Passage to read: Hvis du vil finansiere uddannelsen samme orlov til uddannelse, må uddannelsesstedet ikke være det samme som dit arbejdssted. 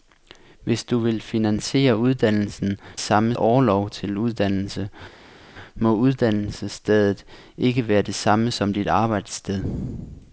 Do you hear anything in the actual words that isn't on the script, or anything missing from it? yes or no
no